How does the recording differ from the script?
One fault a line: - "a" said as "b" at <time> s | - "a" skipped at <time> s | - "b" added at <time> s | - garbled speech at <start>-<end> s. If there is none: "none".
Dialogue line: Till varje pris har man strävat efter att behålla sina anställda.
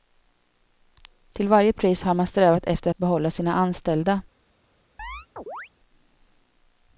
none